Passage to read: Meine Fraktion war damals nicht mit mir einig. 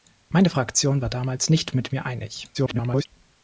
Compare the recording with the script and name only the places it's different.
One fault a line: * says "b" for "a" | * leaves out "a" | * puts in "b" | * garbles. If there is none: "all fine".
* garbles